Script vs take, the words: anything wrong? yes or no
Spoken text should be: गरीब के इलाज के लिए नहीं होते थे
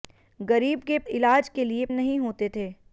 no